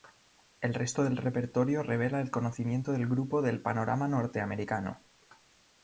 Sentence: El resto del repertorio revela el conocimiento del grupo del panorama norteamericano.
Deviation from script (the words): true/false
false